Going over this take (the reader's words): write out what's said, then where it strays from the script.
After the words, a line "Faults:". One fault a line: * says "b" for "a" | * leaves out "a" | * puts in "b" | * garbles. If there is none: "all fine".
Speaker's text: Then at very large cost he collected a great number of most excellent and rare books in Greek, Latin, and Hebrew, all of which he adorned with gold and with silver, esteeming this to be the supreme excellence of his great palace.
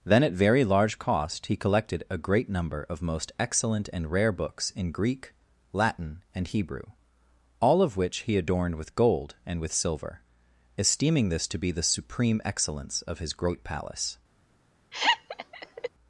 Then at very large cost he collected a great number of most excellent and rare books in Greek, Latin, and Hebrew, all of which he adorned with gold and with silver, esteeming this to be the supreme excellence of his great palace.
Faults:
all fine